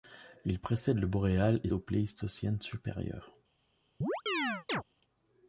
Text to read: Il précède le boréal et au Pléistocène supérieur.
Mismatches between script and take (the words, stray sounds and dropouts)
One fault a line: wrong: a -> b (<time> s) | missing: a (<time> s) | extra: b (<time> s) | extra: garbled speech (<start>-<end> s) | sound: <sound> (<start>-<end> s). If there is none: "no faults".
sound: chirp (4.0-4.8 s)